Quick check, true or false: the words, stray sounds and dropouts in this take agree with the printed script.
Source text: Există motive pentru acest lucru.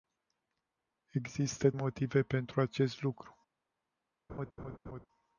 false